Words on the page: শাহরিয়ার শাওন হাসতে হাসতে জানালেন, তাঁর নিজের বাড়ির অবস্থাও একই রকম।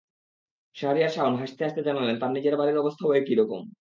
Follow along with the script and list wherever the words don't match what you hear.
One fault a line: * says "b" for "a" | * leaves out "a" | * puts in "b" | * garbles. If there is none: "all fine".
all fine